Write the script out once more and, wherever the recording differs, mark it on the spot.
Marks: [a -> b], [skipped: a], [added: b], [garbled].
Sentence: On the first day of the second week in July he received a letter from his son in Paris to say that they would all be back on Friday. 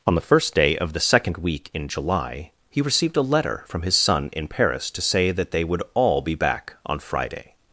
On the first day of the second week in July he received a letter from his son in Paris to say that they would all be back on Friday.